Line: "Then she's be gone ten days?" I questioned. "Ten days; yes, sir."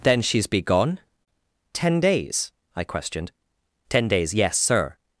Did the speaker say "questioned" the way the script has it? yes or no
yes